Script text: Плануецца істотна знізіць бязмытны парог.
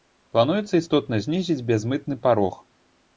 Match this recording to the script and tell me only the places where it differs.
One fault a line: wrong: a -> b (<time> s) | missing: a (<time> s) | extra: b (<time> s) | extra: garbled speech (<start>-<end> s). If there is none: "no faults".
no faults